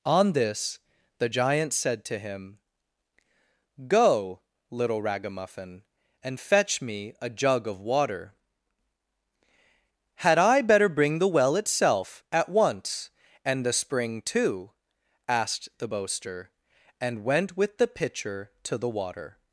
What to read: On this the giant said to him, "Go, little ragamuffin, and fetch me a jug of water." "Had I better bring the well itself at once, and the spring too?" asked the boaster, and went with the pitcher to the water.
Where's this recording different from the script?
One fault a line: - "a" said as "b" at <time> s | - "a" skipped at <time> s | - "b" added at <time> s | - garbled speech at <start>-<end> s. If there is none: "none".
none